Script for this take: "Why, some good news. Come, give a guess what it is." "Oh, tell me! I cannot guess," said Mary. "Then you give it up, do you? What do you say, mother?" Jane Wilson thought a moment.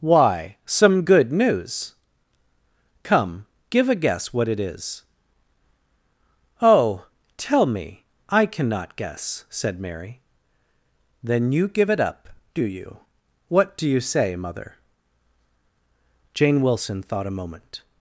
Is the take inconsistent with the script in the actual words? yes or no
no